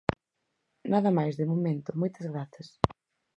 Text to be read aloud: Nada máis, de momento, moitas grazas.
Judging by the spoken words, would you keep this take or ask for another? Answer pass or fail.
pass